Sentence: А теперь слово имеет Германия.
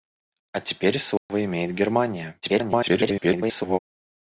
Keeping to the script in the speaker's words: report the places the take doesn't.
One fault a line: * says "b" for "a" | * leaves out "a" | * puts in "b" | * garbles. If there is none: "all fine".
* garbles